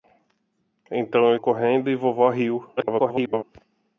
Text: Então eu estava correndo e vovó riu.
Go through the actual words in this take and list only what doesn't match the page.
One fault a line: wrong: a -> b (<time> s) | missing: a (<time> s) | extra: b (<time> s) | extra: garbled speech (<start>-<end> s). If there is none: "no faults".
missing: estava (1.4 s)
extra: garbled speech (2.8-3.4 s)